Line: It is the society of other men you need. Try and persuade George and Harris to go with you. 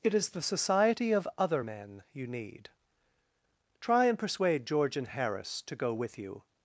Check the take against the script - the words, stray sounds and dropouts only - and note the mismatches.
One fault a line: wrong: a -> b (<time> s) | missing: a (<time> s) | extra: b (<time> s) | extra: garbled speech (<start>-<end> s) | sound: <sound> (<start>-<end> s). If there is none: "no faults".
no faults